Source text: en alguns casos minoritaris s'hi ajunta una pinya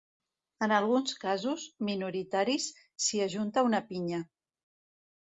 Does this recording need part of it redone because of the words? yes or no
no